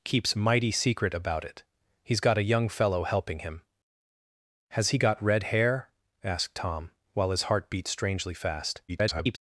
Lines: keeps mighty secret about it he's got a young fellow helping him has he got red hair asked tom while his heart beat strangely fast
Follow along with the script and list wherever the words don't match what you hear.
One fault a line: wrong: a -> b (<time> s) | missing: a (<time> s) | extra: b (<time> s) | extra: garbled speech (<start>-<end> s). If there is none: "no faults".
extra: garbled speech (8.9-9.4 s)